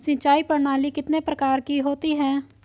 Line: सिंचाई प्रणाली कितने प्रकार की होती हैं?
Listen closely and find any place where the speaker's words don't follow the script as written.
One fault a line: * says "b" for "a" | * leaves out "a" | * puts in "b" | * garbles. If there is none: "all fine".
all fine